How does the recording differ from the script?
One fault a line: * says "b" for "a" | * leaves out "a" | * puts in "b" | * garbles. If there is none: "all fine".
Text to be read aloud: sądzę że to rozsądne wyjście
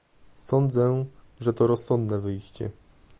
all fine